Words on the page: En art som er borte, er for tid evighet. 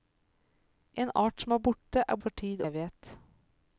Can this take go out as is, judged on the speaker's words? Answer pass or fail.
pass